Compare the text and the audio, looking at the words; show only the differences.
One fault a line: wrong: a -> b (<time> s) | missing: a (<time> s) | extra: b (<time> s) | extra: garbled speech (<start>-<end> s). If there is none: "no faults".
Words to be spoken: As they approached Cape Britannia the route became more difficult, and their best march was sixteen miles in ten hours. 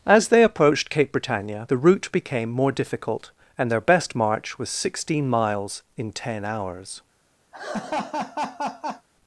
no faults